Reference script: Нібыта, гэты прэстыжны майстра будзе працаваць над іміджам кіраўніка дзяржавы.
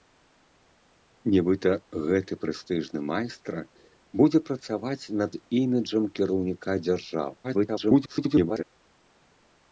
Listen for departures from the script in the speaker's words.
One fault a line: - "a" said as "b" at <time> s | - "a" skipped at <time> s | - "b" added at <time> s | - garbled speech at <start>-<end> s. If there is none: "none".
- garbled speech at 7.4-8.6 s